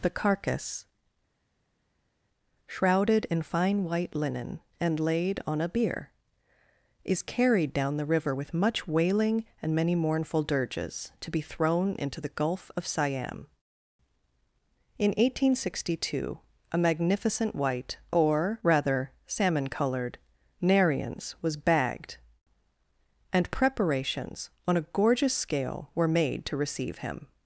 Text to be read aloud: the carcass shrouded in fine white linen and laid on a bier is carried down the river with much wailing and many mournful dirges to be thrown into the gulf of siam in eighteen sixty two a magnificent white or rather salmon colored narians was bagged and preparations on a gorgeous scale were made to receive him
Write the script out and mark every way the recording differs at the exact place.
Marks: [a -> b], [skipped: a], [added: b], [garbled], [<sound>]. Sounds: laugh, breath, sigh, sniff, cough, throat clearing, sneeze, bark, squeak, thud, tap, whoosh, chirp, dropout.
the carcass shrouded in fine white linen and laid on a bier is carried down the river with much wailing and many mournful dirges to be thrown into the gulf of siam in eighteen sixty two a magnificent white or rather salmon colored narians was bagged and preparations on a gorgeous scale were made to receive him